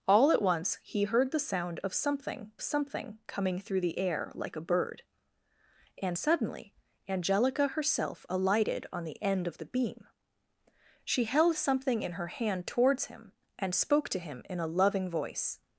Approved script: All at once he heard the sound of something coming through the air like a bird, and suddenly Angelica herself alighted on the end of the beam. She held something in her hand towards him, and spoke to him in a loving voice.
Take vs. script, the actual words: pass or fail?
fail